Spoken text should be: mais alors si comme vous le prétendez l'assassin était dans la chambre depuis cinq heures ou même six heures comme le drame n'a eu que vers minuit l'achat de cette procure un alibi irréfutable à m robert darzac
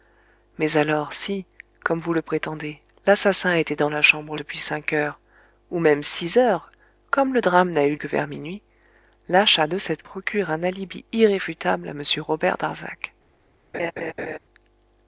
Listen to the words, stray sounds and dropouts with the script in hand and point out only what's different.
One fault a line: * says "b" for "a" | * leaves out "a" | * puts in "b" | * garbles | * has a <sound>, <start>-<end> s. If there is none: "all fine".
* has a laugh, 13.7-14.4 s